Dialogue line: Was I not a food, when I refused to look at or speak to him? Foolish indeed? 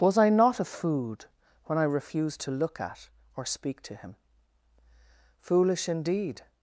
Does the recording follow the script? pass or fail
pass